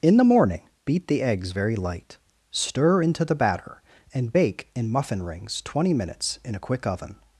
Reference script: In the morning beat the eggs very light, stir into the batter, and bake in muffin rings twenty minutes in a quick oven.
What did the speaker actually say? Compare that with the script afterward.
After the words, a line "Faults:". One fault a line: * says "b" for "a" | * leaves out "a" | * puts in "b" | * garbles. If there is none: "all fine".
In the morning beat the eggs very light, stir into the batter, and bake in muffin rings twenty minutes in a quick oven.
Faults:
all fine